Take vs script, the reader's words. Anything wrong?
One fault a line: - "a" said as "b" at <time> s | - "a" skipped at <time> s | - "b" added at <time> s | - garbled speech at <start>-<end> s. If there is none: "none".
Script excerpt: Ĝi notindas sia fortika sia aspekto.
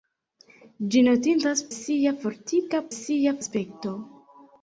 none